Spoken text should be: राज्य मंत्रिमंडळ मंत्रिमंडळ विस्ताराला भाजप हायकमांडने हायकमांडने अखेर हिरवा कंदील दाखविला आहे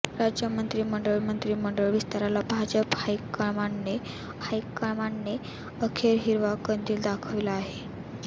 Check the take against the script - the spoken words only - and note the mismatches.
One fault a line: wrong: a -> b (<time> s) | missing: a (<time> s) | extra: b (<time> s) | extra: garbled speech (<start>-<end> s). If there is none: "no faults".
no faults